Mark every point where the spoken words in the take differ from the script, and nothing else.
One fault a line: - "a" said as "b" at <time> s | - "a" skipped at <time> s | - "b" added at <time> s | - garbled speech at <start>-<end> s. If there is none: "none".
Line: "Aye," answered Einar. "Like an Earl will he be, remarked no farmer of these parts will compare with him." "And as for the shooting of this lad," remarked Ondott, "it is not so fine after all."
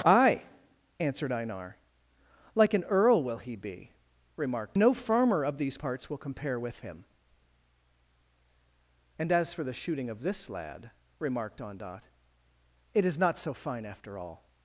none